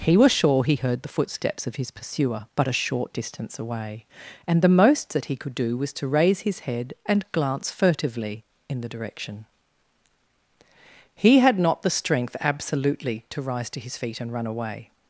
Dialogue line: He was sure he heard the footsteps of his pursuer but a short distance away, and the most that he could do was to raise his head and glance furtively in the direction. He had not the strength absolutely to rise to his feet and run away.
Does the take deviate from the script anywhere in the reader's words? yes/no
no